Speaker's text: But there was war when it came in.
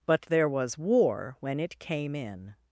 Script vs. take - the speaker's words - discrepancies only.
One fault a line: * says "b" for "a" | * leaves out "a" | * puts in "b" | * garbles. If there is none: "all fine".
all fine